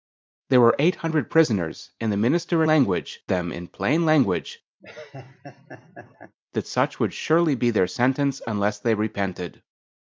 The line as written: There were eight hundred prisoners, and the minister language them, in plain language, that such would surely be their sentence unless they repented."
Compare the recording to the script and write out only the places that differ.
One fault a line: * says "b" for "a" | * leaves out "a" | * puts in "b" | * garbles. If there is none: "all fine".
all fine